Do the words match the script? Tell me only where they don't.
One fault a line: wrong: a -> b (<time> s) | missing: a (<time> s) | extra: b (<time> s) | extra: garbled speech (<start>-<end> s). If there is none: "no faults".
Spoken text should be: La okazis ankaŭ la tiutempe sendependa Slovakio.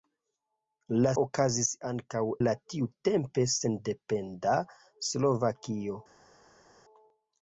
no faults